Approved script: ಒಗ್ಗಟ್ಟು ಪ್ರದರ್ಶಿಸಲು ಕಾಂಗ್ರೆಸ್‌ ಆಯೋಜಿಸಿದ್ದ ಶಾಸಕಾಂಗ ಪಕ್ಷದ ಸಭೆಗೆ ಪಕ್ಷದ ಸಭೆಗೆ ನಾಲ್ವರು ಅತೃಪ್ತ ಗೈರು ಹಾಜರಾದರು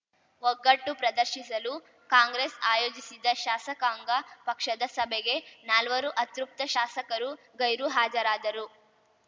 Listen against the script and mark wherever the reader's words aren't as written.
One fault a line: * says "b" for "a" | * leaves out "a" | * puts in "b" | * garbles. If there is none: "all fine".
* leaves out "ಪಕ್ಷದ ಸಭೆಗೆ"
* puts in "ಶಾಸಕರು"